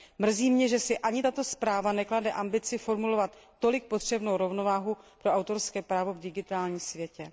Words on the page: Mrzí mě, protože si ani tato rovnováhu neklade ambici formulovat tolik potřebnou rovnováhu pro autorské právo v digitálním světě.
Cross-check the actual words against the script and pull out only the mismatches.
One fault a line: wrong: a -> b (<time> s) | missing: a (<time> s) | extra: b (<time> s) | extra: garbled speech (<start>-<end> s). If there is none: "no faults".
wrong: protože -> že (0.7 s)
wrong: rovnováhu -> zpráva (1.4 s)